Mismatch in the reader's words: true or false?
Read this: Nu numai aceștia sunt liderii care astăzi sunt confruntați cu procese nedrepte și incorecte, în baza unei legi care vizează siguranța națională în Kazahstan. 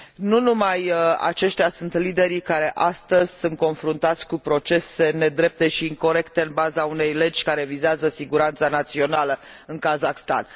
false